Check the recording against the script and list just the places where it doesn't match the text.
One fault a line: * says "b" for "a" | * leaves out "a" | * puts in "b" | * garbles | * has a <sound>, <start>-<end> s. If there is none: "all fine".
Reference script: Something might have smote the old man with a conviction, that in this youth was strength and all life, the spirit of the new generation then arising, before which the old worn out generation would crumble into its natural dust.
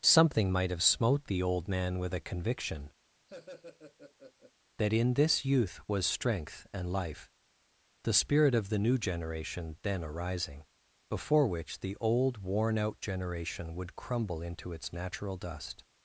* has a laugh, 3.3-4.5 s
* leaves out "all"